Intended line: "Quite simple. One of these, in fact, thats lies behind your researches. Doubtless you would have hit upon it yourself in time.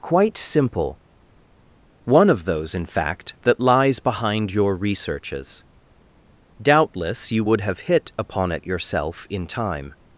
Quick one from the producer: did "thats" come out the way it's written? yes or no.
no